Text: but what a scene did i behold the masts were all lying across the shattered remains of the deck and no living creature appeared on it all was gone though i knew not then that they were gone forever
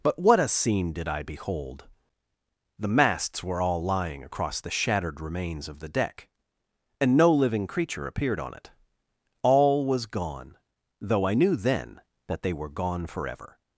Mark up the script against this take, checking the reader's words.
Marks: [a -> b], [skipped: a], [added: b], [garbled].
but what a scene did i behold the masts were all lying across the shattered remains of the deck and no living creature appeared on it all was gone though i knew [skipped: not] then that they were gone forever